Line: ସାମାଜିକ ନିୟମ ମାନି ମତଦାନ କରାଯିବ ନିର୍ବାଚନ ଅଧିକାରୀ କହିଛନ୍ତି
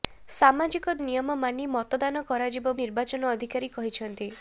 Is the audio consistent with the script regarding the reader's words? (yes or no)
yes